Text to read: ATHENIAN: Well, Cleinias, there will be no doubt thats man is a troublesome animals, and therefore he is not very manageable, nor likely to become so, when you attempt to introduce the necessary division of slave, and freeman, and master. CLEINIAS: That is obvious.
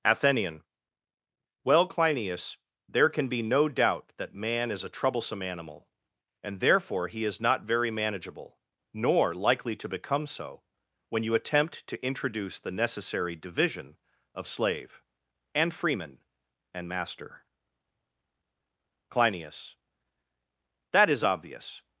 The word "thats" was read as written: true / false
false